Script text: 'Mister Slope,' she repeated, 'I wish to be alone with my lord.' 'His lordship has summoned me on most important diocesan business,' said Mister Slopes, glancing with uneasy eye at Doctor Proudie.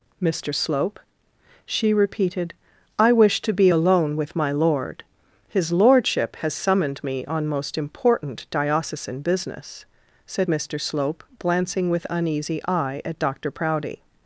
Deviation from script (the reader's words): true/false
true